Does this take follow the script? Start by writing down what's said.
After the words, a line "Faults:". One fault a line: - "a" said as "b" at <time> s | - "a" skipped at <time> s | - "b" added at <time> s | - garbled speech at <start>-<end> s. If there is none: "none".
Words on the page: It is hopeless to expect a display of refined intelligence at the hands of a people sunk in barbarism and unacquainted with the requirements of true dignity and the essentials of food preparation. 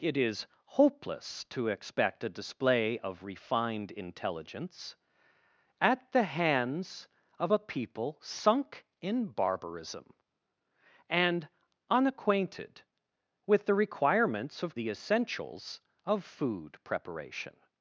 It is hopeless to expect a display of refined intelligence at the hands of a people sunk in barbarism and unacquainted with the requirements of the essentials of food preparation.
Faults:
- "true dignity and" skipped at 14.8 s